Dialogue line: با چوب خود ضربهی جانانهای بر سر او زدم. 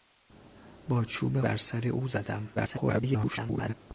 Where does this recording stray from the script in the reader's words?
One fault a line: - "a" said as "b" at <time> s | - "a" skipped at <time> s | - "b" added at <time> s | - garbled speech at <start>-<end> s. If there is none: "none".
- "خود ضربهی جانانهای" skipped at 1.4 s
- garbled speech at 2.6-3.7 s